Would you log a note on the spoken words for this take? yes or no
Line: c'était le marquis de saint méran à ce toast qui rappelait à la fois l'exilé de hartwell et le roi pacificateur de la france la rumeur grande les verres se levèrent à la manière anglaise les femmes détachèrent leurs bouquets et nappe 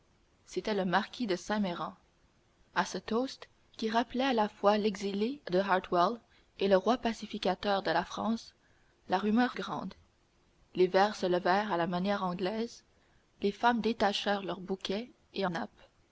no